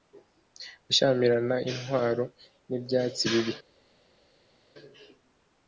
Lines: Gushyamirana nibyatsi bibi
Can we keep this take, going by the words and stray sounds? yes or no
no